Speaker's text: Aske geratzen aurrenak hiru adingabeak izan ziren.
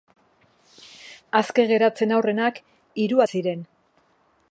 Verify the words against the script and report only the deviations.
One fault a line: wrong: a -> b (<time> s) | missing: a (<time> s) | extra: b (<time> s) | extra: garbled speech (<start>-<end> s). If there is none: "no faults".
missing: adingabeak izan (3.2 s)